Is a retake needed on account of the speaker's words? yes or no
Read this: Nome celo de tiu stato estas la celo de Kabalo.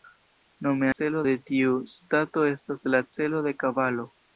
no